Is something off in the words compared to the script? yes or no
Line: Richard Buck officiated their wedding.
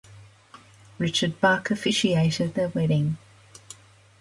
no